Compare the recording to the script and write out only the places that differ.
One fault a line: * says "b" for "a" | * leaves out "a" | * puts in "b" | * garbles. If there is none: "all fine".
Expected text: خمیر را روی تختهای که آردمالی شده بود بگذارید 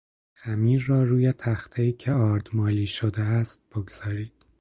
* says "است" for "بود"